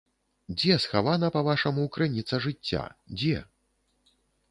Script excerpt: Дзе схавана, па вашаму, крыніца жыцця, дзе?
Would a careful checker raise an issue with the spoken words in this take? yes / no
no